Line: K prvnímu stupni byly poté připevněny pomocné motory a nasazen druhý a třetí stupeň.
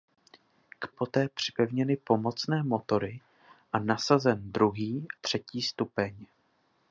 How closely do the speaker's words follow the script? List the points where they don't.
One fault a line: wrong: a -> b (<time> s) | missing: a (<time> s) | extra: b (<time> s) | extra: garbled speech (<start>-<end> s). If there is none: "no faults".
missing: prvnímu stupni byly (0.9 s)
missing: a (5.1 s)